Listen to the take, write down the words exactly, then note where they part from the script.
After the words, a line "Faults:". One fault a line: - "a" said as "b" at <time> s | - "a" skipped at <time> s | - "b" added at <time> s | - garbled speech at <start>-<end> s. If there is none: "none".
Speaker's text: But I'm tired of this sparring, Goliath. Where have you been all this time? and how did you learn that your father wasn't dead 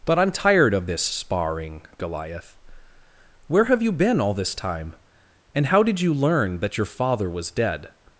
But I'm tired of this sparring, Goliath. Where have you been all this time? and how did you learn that your father was dead
Faults:
- "wasn't" said as "was" at 7.3 s